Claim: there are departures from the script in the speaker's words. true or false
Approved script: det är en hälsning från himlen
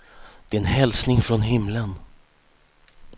false